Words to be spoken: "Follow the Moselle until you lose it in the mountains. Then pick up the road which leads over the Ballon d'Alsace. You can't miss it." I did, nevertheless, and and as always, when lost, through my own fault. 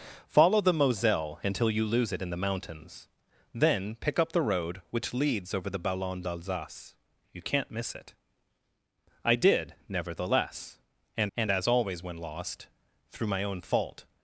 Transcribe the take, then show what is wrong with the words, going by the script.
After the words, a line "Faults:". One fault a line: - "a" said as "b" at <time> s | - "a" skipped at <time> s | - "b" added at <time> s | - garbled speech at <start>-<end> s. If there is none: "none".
"Follow the Moselle until you lose it in the mountains. Then pick up the road which leads over the Ballon d'Alsace. You can't miss it." I did, nevertheless, and and as always, when lost, through my own fault.
Faults:
none